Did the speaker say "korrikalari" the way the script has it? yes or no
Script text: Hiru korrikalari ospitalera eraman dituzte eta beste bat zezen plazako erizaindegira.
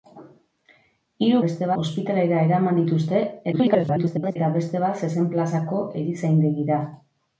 no